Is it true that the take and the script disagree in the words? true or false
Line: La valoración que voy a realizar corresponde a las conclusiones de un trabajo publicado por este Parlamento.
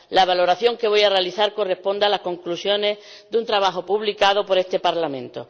false